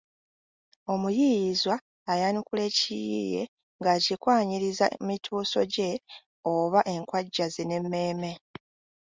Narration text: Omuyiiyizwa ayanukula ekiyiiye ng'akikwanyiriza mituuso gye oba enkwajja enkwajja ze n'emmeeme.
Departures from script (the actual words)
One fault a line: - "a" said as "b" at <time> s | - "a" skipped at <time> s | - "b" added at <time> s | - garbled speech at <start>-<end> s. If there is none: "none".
- "enkwajja" skipped at 7.5 s